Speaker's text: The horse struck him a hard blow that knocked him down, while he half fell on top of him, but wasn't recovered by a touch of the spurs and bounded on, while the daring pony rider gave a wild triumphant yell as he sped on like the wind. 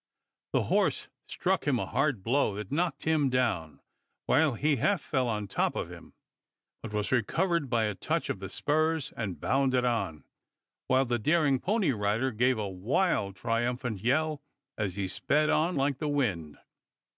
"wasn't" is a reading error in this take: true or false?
true